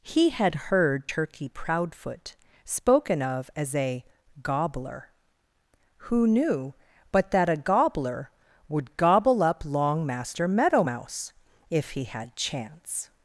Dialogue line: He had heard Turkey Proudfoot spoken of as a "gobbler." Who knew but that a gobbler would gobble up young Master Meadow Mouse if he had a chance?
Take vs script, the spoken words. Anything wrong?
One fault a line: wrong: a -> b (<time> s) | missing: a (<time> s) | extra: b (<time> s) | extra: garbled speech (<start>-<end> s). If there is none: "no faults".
wrong: young -> long (9.6 s)
missing: a (12.4 s)